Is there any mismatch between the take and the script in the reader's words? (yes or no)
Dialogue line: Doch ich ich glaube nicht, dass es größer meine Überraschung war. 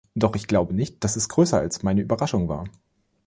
yes